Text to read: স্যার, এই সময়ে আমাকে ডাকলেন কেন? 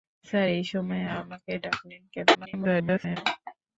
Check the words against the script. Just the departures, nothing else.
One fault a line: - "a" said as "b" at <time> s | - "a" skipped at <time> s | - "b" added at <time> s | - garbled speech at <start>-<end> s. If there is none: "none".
- garbled speech at 2.3-3.2 s